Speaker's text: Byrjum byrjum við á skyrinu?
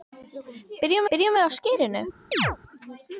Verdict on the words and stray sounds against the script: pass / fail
fail